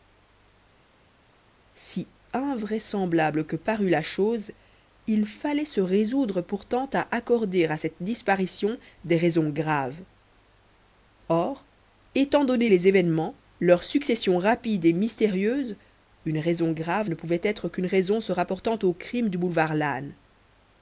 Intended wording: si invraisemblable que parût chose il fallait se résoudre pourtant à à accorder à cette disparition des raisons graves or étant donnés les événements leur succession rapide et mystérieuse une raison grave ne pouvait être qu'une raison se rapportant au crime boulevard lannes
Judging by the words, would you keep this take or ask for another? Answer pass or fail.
fail